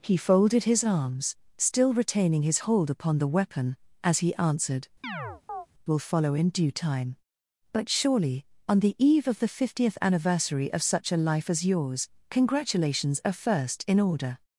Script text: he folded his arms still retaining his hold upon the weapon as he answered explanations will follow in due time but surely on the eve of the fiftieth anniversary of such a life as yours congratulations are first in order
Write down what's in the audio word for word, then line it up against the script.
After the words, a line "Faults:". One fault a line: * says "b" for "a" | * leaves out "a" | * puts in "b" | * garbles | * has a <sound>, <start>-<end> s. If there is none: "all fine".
he folded his arms still retaining his hold upon the weapon as he answered will follow in due time but surely on the eve of the fiftieth anniversary of such a life as yours congratulations are first in order
Faults:
* leaves out "explanations"
* has a chirp, 5.0-5.7 s